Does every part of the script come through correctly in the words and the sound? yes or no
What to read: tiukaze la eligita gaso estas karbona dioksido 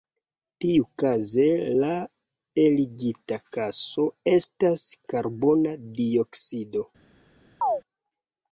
no